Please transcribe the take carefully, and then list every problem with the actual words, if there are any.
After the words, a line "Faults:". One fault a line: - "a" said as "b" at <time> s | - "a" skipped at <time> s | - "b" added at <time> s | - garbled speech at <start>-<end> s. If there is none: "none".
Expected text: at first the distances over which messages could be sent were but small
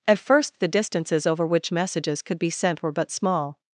at first the distances over which messages could be sent were but small
Faults:
none